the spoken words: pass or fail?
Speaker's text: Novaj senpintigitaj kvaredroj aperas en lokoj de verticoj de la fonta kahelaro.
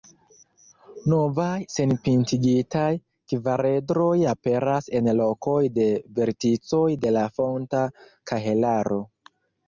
pass